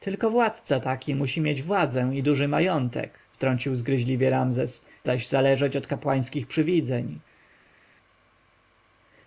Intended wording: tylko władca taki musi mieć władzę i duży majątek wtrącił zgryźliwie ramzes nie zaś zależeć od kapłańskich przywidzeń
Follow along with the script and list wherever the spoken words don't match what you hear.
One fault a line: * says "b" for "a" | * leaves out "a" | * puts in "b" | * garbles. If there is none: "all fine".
* leaves out "nie"